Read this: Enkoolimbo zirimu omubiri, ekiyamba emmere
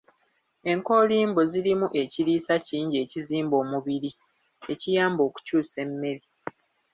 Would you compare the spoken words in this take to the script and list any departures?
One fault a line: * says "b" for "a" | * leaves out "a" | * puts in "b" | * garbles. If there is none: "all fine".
* puts in "ekiriisa kingi ekizimba"
* puts in "okukyusa"